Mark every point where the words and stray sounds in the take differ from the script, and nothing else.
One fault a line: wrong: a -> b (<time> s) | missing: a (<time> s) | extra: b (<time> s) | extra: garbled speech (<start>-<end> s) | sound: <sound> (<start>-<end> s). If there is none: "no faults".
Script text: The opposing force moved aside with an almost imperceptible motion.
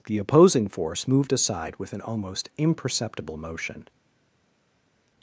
no faults